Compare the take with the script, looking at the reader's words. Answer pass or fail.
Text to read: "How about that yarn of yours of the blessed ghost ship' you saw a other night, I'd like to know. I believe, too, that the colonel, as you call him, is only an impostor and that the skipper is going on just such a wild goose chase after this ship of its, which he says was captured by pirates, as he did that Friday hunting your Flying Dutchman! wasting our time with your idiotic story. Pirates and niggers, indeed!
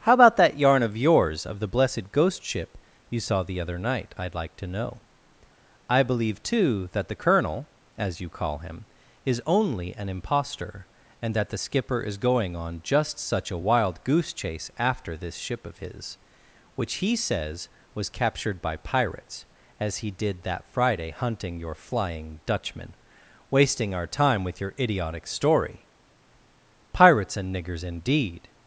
fail